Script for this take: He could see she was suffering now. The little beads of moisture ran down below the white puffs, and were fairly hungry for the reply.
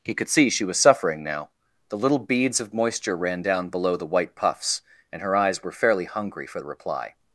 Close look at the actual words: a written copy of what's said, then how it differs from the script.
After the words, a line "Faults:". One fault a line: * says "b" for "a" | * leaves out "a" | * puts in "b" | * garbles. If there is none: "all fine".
He could see she was suffering now. The little beads of moisture ran down below the white puffs, and her eyes were fairly hungry for the reply.
Faults:
* puts in "her eyes"